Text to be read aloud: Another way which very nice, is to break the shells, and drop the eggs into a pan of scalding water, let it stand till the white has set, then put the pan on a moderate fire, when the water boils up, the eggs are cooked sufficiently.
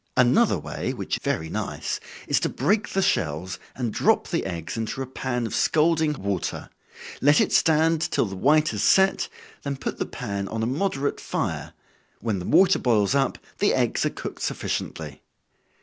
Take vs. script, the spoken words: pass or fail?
pass